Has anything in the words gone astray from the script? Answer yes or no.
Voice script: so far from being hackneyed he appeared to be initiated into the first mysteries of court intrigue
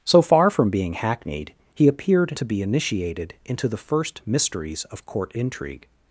no